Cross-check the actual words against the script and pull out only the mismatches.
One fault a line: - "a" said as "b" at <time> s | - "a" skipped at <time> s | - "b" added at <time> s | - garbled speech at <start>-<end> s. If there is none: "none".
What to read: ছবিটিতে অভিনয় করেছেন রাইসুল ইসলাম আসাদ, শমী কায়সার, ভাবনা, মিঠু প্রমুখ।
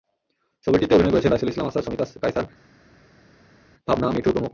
none